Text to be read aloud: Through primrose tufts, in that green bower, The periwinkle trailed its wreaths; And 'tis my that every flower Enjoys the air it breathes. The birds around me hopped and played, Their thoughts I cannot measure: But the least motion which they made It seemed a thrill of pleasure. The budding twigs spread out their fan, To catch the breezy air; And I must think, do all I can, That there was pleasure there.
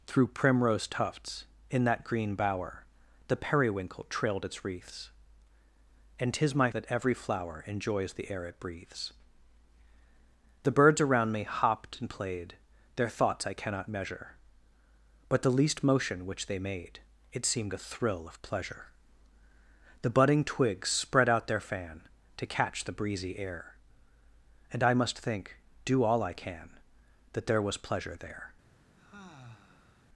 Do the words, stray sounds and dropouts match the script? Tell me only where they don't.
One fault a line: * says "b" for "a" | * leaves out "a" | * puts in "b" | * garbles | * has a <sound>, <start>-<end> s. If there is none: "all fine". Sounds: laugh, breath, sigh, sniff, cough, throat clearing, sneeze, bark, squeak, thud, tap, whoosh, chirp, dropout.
* has a sigh, 29.0-30.1 s